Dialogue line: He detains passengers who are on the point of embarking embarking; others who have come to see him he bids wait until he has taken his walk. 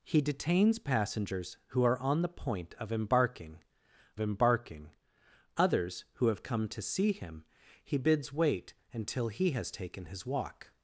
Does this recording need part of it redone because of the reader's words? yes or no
no